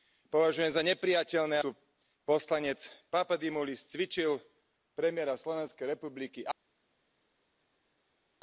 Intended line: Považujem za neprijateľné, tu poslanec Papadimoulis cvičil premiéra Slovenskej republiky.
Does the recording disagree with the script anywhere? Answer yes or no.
no